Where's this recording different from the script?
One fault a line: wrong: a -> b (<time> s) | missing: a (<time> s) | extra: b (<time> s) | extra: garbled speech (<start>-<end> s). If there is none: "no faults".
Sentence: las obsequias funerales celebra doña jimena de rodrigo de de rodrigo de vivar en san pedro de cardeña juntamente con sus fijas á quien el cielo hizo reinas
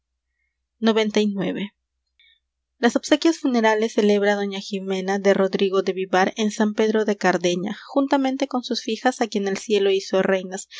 missing: de rodrigo de (5.9 s)